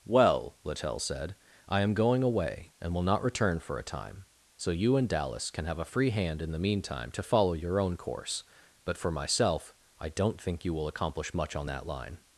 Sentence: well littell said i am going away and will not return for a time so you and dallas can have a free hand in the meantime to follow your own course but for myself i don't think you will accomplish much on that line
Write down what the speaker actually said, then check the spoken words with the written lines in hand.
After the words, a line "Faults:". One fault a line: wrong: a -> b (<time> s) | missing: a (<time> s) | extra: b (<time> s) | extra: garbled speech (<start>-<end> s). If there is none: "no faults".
well littell said i am going away and will not return for a time so you and dallas can have a free hand in the meantime to follow your own course but for myself i don't think you will accomplish much on that line
Faults:
no faults